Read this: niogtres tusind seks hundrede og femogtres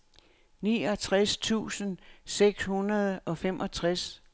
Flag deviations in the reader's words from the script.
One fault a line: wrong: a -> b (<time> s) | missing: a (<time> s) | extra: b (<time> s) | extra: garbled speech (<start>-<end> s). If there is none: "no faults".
no faults